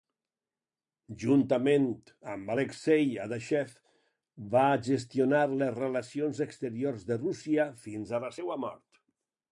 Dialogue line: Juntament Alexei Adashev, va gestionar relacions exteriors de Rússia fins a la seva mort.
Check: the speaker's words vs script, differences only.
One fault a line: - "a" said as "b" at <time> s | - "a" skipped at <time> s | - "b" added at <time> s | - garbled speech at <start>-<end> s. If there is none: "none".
- "amb" added at 2.4 s
- "les" added at 5.6 s